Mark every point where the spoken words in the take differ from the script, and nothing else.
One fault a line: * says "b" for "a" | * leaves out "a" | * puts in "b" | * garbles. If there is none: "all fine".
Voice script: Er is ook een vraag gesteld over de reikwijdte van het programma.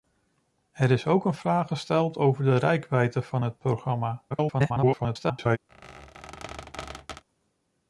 * garbles